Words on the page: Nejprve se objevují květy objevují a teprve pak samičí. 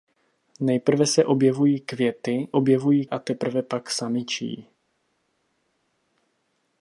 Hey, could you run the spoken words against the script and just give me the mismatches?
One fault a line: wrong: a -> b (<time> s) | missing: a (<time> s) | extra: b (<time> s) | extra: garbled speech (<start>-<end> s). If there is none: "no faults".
no faults